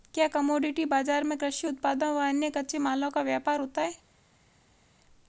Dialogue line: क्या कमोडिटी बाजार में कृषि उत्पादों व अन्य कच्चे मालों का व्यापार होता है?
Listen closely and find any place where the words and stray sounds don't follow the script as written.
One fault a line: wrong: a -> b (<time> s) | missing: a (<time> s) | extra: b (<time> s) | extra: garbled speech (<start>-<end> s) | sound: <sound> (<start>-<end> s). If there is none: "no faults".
no faults